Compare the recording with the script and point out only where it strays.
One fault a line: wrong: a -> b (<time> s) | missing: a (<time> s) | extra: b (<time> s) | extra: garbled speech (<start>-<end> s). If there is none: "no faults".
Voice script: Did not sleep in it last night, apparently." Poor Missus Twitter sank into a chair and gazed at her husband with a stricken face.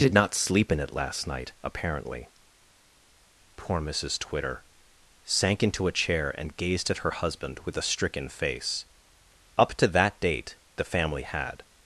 extra: Up to that date the family had (9.6 s)